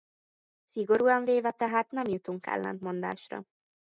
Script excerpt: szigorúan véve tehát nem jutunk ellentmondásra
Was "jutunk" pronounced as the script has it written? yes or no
yes